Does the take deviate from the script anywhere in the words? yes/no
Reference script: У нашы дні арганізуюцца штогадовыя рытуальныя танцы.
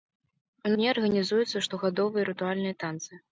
yes